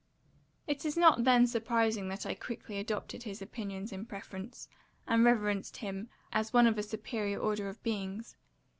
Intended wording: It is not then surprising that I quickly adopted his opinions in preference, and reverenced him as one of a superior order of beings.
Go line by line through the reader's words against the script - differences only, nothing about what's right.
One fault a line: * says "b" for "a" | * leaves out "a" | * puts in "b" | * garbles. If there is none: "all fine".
all fine